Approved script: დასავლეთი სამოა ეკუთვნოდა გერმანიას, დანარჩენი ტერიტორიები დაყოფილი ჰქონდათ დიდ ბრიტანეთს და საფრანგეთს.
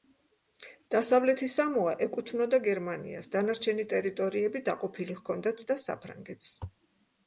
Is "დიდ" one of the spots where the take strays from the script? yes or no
yes